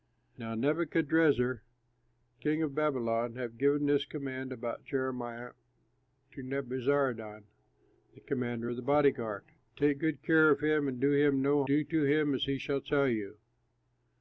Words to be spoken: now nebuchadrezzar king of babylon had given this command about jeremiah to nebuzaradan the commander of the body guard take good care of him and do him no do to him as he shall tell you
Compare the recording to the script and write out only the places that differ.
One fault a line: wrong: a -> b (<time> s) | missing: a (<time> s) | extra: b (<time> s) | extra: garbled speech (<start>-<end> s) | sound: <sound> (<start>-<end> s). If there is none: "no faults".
no faults